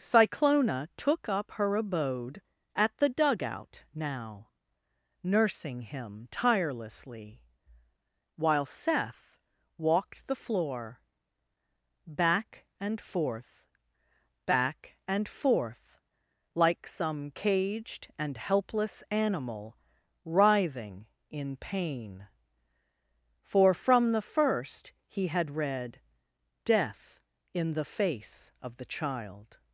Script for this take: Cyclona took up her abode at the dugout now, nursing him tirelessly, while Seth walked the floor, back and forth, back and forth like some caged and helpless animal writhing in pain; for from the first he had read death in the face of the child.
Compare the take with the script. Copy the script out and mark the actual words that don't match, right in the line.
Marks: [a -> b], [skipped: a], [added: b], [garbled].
Cyclona took up her abode at the dugout now, nursing him tirelessly, while Seth walked the floor, back and forth, back and forth like some caged and helpless animal writhing in pain; for from the first he had read death in the face of the child.